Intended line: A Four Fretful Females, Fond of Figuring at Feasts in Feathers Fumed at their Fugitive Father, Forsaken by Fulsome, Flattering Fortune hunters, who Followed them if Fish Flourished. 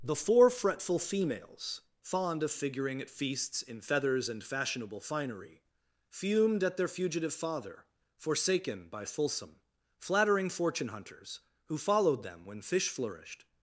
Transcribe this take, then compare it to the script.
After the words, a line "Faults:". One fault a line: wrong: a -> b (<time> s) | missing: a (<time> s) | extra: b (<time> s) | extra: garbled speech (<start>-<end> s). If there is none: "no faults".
The Four Fretful Females, Fond of Figuring at Feasts in Feathers and Fashionable Finery, Fumed at their Fugitive Father, Forsaken by Fulsome, Flattering Fortune hunters, who Followed them when Fish Flourished.
Faults:
wrong: A -> The (0.0 s)
extra: and Fashionable Finery (4.3 s)
wrong: if -> when (12.4 s)